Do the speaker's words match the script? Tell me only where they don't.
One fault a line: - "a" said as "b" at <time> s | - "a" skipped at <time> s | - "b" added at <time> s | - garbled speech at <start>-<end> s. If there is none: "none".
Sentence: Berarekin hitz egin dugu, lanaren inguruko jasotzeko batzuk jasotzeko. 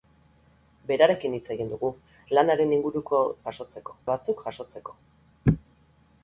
none